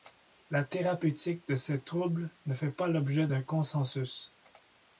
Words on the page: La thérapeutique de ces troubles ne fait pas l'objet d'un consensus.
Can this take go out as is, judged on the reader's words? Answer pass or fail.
pass